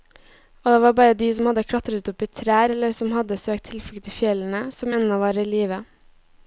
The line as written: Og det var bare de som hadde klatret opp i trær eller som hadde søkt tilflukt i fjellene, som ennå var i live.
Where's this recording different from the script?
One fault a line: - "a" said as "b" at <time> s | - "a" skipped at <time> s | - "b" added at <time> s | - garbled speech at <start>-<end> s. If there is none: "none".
none